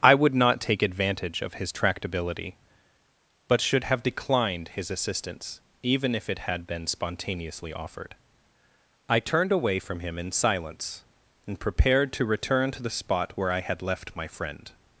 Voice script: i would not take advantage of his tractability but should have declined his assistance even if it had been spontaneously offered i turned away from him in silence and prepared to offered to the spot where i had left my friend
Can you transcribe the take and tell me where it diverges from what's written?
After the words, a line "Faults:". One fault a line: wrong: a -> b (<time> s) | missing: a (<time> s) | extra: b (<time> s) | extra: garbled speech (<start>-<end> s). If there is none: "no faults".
i would not take advantage of his tractability but should have declined his assistance even if it had been spontaneously offered i turned away from him in silence and prepared to return to the spot where i had left my friend
Faults:
wrong: offered -> return (12.2 s)